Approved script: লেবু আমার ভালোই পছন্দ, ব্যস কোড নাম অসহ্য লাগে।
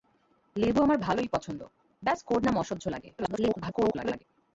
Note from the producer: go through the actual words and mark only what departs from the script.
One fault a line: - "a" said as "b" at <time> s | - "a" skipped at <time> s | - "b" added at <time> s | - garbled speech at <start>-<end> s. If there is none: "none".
- garbled speech at 3.2-4.2 s